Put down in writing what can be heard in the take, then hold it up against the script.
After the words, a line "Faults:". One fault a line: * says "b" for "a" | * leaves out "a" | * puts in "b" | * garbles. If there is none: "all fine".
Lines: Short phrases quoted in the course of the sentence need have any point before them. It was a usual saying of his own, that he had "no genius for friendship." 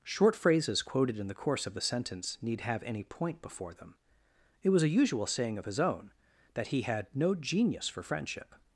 Short phrases quoted in the course of the sentence need have any point before them. It was a usual saying of his own, that he had "no genius for friendship."
Faults:
all fine